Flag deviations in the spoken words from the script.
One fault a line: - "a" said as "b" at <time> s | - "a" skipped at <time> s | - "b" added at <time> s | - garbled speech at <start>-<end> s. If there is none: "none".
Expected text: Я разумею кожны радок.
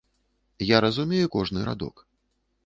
none